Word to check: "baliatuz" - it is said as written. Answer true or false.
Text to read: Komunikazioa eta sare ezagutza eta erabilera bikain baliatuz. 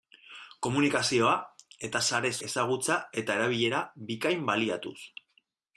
true